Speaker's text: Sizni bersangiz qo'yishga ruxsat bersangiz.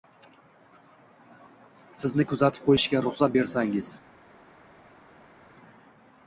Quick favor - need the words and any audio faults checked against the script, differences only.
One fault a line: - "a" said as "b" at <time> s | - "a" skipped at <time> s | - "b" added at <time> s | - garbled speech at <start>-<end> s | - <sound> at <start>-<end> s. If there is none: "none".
- "bersangiz" said as "kuzatib" at 2.3 s